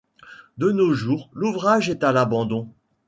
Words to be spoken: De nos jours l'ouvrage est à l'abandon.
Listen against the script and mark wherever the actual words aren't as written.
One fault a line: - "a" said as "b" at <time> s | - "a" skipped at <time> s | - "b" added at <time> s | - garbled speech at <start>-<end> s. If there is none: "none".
none